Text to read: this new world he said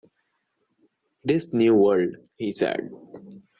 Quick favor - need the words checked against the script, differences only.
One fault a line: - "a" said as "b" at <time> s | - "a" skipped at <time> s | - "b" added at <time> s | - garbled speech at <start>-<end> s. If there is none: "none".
none